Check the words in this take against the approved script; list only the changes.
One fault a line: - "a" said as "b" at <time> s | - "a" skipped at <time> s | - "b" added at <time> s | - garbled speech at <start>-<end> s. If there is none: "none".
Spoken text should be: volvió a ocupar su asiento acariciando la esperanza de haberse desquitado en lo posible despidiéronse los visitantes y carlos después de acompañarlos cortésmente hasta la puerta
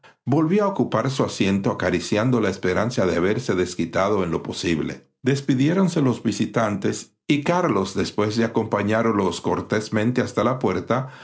none